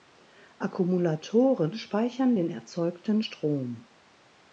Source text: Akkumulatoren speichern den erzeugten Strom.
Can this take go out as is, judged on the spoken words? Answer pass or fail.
pass